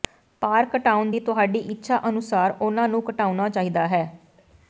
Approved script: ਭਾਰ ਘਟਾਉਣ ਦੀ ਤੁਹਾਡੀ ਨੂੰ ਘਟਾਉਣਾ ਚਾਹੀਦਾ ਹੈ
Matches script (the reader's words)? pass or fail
fail